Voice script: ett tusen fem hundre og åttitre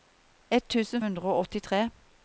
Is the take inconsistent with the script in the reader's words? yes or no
yes